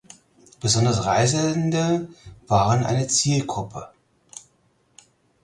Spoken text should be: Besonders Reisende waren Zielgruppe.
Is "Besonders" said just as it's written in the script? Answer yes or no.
yes